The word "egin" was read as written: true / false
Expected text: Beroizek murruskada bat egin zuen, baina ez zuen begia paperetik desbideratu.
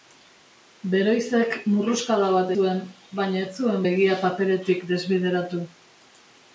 false